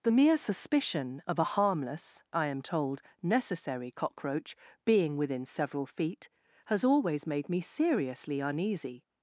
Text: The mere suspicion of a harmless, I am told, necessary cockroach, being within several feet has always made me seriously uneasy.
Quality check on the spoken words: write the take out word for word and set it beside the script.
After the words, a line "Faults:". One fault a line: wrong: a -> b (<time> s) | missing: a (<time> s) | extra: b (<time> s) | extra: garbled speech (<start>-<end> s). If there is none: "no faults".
The mere suspicion of a harmless, I am told, necessary cockroach, being within several feet has always made me seriously uneasy.
Faults:
no faults